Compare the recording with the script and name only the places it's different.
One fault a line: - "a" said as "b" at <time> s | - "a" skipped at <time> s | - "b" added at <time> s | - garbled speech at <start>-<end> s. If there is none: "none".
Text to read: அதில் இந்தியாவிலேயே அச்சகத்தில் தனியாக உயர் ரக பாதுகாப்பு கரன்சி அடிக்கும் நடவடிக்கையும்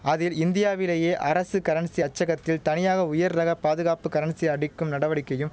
- "அரசு கரன்சி" added at 1.2 s